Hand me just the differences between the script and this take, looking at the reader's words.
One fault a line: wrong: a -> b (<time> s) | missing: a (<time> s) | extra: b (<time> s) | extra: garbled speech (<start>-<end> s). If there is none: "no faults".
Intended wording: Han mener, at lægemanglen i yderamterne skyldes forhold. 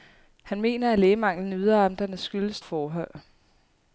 no faults